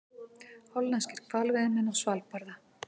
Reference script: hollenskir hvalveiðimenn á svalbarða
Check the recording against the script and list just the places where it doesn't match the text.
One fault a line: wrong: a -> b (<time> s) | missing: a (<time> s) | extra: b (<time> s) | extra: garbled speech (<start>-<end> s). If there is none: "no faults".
no faults